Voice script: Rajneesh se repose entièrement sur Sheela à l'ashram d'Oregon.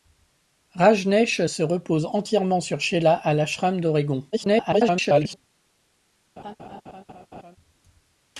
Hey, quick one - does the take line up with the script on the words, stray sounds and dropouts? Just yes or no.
no